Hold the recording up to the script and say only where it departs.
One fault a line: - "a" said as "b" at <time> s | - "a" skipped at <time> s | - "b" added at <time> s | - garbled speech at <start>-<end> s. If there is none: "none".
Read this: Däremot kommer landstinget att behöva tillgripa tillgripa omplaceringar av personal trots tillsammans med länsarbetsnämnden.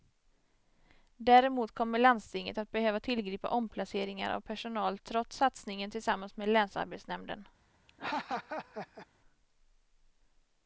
- "tillgripa" skipped at 3.5 s
- "satsningen" added at 5.4 s